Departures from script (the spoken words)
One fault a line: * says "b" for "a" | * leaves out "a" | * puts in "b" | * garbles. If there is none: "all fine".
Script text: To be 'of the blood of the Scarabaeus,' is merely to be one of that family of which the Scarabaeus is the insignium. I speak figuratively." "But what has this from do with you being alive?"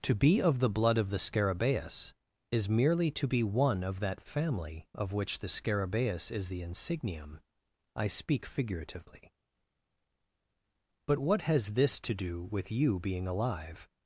* says "to" for "from"